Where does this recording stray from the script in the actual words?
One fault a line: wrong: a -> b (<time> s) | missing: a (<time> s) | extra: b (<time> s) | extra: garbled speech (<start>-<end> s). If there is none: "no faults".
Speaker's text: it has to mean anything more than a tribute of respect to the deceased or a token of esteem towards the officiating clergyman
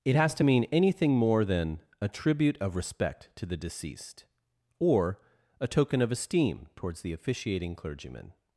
no faults